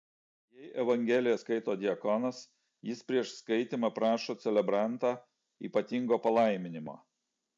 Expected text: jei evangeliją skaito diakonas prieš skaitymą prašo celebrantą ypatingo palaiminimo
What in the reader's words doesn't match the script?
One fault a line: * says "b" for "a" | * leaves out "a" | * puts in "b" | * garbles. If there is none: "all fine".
* puts in "jis"